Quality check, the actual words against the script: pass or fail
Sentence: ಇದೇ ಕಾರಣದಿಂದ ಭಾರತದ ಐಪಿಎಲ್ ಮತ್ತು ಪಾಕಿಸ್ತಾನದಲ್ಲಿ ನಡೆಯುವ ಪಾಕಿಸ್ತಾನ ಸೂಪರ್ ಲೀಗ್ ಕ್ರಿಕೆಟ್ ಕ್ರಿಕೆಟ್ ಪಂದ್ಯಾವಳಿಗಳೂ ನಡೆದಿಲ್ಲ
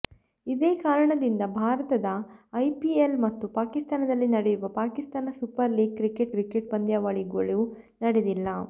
pass